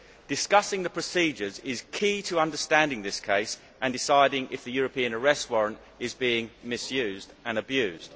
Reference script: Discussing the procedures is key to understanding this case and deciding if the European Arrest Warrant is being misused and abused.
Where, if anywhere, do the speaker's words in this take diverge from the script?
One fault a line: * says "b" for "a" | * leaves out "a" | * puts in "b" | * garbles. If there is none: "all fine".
all fine